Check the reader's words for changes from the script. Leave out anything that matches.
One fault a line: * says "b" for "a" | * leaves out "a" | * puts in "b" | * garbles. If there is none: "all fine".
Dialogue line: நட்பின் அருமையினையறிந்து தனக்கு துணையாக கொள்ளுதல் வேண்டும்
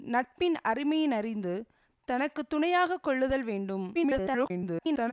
* garbles